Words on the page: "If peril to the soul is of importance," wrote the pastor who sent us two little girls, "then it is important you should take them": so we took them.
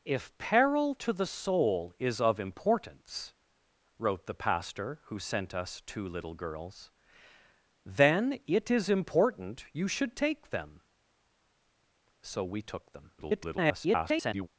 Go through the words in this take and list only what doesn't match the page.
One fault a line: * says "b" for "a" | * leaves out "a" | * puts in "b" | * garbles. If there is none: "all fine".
* garbles